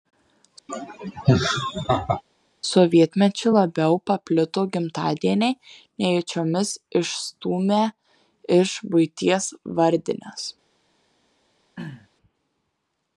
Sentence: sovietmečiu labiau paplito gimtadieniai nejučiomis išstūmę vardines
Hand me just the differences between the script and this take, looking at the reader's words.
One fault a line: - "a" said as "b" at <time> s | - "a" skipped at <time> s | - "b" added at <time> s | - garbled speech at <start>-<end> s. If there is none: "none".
- "iš buities" added at 8.6 s